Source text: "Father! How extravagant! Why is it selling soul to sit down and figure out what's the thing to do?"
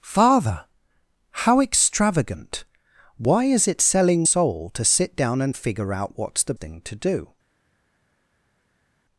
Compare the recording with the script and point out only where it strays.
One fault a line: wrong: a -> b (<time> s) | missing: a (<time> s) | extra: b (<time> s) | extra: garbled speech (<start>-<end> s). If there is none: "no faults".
no faults